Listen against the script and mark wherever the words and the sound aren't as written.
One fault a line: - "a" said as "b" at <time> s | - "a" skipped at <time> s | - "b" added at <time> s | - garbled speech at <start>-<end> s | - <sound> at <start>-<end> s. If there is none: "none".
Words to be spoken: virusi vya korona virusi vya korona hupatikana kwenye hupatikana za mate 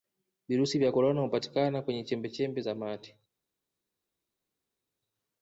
- "virusi vya korona" skipped at 1.2 s
- "hupatikana" said as "chembechembe" at 2.0 s